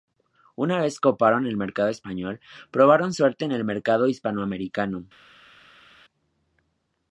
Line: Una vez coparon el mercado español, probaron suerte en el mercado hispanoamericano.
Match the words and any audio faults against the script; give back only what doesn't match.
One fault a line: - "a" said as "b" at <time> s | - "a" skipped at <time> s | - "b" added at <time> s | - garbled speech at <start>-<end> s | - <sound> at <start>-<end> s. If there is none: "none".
none